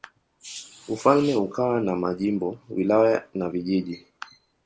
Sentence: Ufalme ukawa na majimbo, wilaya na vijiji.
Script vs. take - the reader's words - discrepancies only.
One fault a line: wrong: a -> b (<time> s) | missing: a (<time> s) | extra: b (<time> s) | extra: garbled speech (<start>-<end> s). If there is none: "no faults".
no faults